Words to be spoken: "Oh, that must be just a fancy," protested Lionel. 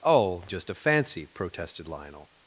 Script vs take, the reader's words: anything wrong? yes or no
yes